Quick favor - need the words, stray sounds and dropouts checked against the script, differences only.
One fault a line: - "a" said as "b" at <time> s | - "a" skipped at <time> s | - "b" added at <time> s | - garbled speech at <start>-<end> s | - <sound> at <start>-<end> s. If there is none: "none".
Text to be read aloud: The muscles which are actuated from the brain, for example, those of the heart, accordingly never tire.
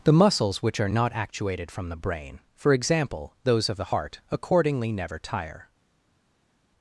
- "not" added at 0.9 s